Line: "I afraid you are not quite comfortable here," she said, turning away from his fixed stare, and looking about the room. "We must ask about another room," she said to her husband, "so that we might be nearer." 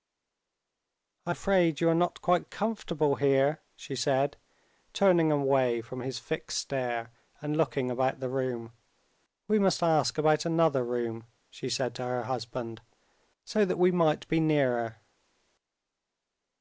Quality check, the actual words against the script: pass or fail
pass